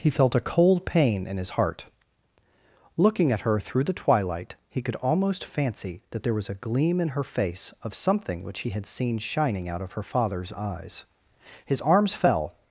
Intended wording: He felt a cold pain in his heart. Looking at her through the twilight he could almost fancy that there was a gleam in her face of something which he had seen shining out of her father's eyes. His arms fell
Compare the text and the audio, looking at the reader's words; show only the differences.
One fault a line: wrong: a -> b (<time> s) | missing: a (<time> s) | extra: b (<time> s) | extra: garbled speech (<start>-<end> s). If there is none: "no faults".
no faults